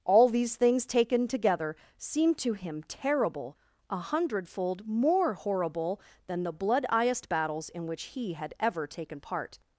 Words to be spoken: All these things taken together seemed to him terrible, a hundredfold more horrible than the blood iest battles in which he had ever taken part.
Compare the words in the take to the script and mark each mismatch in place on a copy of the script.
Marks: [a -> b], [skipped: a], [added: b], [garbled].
All these things taken together seemed to him terrible, a hundredfold more horrible than the blood iest battles in which he had ever taken part.